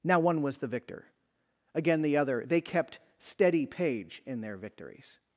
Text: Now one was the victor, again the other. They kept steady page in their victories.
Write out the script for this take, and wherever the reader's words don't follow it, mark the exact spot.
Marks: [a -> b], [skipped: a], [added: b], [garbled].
Now one was the victor, again the other. They kept steady page in their victories.